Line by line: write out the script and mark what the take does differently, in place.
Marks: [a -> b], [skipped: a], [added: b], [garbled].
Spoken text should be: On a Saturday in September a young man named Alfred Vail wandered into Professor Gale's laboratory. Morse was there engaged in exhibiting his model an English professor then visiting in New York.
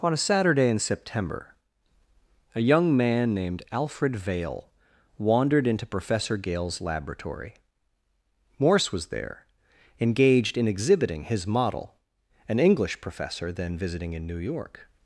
On a Saturday in September a young man named Alfred Vail wandered into Professor Gale's laboratory. Morse was there engaged in exhibiting his model an English professor then visiting in New York.